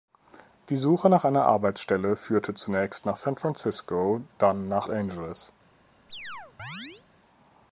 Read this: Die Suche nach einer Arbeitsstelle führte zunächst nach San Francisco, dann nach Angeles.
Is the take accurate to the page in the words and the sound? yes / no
no